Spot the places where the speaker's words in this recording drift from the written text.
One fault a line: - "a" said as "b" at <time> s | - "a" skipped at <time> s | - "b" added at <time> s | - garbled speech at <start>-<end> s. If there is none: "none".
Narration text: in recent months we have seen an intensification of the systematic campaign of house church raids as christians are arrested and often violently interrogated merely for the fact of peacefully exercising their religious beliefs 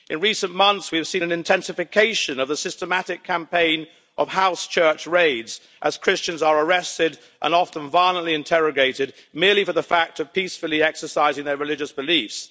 none